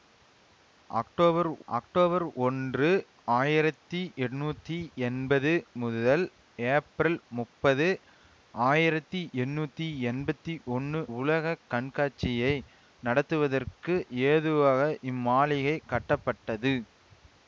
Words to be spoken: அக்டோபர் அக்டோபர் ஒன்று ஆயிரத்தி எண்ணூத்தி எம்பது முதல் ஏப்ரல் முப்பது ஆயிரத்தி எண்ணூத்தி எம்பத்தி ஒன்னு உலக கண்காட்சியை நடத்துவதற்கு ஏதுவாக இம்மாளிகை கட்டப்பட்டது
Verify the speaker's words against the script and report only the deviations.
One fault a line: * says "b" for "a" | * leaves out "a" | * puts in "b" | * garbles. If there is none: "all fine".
all fine